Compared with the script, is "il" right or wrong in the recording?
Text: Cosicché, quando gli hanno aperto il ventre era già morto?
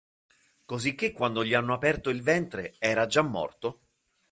right